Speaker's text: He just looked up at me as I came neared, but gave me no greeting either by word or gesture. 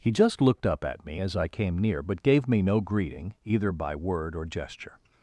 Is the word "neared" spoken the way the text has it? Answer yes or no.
no